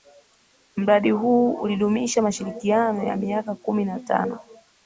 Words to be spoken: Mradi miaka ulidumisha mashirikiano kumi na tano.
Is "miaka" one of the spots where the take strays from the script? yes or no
yes